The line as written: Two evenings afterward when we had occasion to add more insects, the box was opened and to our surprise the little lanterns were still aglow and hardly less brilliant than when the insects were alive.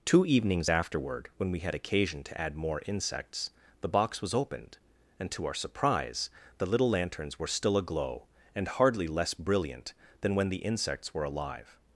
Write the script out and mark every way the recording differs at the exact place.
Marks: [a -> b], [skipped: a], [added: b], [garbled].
Two evenings afterward when we had occasion to add more insects, the box was opened and to our surprise the little lanterns were still aglow and hardly less brilliant than when the insects were alive.